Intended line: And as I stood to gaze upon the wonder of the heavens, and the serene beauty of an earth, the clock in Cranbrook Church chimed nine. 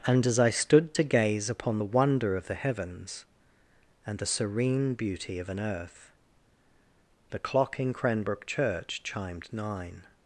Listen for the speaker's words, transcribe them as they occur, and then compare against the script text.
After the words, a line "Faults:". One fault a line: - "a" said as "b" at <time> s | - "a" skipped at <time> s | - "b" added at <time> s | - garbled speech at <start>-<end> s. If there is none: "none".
And as I stood to gaze upon the wonder of the heavens, and the serene beauty of an earth, the clock in Cranbrook Church chimed nine.
Faults:
none